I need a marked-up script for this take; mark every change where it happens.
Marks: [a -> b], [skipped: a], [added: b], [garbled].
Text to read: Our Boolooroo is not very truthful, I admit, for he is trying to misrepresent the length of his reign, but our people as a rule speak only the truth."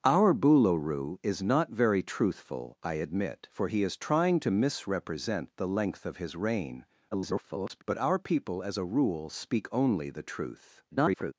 Our Boolooroo is not very truthful, I admit, for he is trying to misrepresent the length of his reign, [garbled] but our people as a rule speak only the truth." [garbled]